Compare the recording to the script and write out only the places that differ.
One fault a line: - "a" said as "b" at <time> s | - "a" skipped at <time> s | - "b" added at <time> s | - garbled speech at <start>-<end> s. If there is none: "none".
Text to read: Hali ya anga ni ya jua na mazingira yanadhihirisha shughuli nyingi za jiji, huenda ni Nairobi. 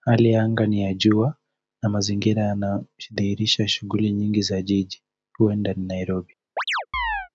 none